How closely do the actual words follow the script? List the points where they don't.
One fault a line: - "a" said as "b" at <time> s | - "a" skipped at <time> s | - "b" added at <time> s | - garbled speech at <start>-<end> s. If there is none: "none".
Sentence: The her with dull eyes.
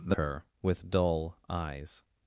none